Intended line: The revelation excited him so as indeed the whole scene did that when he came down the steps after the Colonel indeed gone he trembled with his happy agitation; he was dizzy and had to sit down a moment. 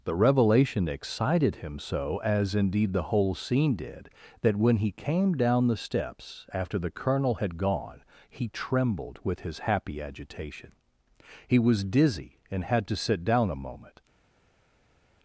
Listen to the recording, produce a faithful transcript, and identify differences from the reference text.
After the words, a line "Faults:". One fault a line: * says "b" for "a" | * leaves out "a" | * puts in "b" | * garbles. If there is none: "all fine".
The revelation excited him so as indeed the whole scene did that when he came down the steps after the Colonel had gone he trembled with his happy agitation; he was dizzy and had to sit down a moment.
Faults:
* says "had" for "indeed"